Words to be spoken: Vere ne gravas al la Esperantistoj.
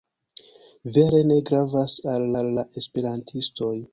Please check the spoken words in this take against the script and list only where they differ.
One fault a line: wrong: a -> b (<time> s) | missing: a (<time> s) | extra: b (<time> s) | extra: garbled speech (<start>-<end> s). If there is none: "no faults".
extra: al (2.4 s)